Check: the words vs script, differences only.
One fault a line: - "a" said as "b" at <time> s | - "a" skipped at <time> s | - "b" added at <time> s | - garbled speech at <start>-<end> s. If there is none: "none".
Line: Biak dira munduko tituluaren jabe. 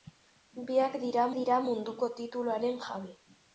- "dira" added at 1.4 s